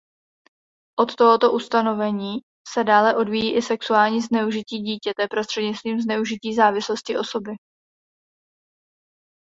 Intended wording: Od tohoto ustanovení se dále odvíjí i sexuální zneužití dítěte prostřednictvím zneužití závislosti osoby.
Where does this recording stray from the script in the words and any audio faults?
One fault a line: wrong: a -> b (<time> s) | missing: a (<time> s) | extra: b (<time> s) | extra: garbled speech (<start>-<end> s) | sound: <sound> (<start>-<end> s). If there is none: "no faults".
no faults